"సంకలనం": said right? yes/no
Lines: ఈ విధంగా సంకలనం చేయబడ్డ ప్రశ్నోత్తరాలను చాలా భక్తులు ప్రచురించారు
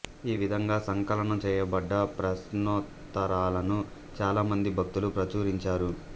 yes